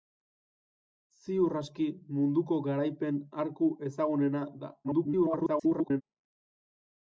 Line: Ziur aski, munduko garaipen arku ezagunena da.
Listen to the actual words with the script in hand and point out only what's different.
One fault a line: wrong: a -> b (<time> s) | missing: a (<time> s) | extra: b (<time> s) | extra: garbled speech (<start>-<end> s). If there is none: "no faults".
extra: garbled speech (4.8-6.0 s)